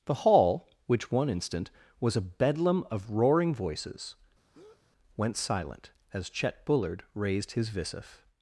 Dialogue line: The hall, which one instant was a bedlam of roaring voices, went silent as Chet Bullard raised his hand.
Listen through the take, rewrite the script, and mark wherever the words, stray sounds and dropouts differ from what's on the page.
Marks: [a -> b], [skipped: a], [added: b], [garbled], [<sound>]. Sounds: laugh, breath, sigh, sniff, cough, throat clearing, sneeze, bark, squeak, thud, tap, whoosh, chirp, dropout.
The hall, which one instant was a bedlam of roaring voices, [breath] went silent as Chet Bullard raised his [hand. -> visif]